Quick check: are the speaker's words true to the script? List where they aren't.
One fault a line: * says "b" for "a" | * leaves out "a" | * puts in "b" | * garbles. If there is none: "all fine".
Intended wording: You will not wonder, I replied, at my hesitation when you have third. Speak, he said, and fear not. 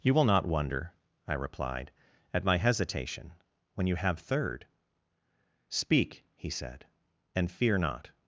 all fine